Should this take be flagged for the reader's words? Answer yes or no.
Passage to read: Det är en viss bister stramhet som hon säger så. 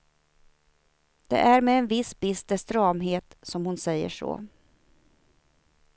yes